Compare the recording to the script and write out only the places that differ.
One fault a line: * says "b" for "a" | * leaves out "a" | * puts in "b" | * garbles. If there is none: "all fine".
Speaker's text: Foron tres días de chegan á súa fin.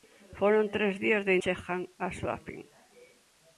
all fine